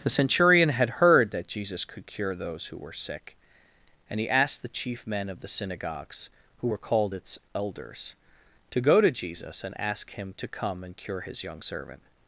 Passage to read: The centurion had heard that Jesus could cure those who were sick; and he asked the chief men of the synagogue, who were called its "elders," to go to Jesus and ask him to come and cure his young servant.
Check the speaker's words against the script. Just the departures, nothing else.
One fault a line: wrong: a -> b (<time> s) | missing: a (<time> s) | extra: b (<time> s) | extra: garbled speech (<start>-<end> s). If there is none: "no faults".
wrong: synagogue -> synagogues (5.5 s)